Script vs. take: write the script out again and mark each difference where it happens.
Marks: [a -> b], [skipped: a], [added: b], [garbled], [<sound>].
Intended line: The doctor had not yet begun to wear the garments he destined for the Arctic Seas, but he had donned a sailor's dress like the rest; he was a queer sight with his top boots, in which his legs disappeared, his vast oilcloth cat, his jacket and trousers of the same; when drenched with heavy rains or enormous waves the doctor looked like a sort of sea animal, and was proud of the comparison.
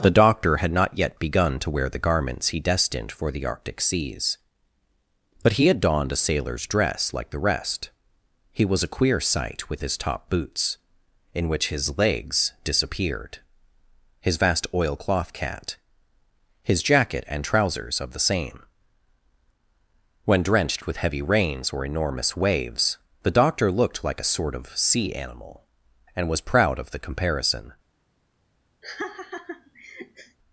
The doctor had not yet begun to wear the garments he destined for the Arctic Seas, but he had donned a sailor's dress like the rest; he was a queer sight with his top boots, in which his legs disappeared, his vast oilcloth cat, his jacket and trousers of the same; when drenched with heavy rains or enormous waves the doctor looked like a sort of sea animal, and was proud of the comparison. [laugh]